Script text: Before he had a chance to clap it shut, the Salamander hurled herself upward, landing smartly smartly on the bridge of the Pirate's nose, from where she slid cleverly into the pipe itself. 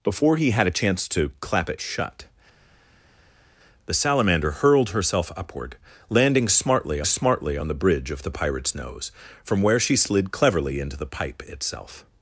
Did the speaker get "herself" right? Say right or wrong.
right